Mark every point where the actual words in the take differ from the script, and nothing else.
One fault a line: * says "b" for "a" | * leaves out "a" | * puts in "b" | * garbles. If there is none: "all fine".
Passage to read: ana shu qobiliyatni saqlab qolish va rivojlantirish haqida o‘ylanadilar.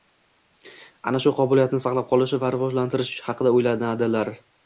all fine